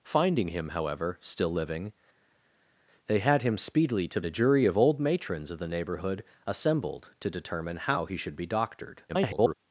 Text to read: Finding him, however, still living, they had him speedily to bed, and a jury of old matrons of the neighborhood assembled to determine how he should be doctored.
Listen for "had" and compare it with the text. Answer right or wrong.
right